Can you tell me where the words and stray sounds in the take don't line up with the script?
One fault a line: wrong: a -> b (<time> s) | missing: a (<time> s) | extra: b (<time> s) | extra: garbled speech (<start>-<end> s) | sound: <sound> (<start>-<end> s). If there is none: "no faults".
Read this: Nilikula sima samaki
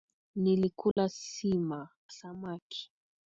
sound: dropout (0.9-1.0 s)